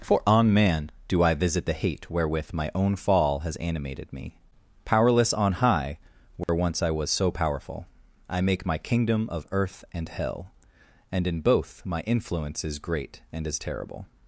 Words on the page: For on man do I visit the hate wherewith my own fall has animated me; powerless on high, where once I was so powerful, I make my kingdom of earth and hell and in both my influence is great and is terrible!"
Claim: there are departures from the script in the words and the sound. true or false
true